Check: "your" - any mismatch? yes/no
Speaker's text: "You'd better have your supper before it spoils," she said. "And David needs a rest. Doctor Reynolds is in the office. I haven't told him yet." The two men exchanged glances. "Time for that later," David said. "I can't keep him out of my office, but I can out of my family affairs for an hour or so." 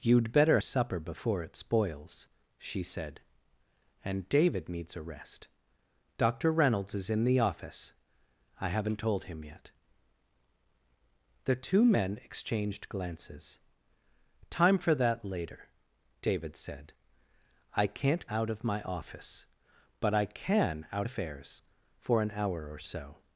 yes